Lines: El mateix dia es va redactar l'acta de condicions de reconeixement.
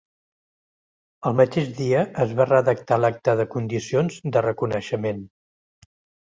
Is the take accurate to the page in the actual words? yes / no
yes